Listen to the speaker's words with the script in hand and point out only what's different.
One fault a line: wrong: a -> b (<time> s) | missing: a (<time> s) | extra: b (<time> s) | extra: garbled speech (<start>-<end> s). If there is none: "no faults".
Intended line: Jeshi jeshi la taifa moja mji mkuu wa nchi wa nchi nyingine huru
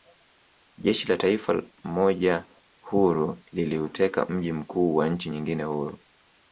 missing: jeshi (1.1 s)
extra: huru liliuteka (2.8 s)
missing: wa nchi (5.3 s)